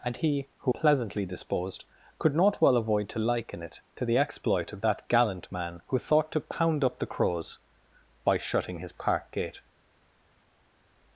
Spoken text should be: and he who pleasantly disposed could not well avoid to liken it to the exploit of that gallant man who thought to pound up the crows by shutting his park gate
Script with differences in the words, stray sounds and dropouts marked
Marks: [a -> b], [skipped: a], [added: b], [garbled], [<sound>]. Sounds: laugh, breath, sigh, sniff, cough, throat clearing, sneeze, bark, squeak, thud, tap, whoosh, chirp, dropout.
and he who pleasantly disposed could not well avoid to liken it to the exploit of that gallant man who thought to pound up the crows by shutting his park gate